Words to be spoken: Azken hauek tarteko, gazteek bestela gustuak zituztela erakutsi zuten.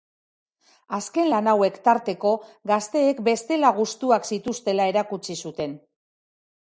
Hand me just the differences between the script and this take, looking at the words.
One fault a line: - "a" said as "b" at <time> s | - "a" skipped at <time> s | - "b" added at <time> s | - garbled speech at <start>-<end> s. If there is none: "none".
- "lan" added at 1.3 s